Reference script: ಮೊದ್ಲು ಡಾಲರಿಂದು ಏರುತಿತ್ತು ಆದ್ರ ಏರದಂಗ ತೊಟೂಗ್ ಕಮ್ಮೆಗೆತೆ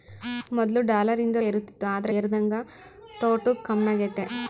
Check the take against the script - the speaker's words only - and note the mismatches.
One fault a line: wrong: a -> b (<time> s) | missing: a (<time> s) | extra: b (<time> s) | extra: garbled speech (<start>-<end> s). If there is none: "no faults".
no faults